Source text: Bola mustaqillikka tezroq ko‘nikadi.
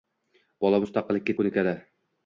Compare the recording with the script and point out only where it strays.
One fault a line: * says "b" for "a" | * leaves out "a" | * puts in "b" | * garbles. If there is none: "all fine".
* leaves out "tezroq"